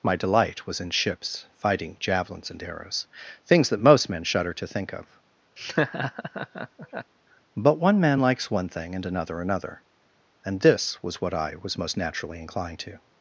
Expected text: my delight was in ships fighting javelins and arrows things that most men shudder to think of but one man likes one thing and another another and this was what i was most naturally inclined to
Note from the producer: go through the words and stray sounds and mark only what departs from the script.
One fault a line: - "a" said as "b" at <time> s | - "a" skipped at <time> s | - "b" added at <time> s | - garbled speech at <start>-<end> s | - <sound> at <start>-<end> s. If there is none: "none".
- laugh at 5.6-7.1 s